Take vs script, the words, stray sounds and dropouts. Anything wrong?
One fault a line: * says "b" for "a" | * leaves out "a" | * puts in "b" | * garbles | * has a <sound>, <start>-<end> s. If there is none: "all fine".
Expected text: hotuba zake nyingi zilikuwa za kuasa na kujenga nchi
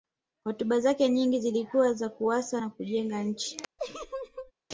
* has a laugh, 3.8-4.5 s